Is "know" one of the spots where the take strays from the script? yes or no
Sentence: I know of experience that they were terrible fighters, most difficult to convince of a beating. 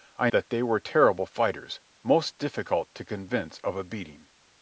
yes